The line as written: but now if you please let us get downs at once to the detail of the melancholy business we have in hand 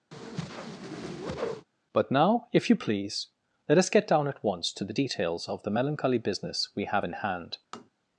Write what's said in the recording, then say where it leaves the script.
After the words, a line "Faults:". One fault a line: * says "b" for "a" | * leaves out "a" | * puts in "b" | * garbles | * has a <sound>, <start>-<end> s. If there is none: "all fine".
but now if you please let us get down at once to the details of the melancholy business we have in hand
Faults:
* has a whoosh, 0.1-1.7 s
* says "down" for "downs"
* says "details" for "detail"
* has a tap, 7.7-7.9 s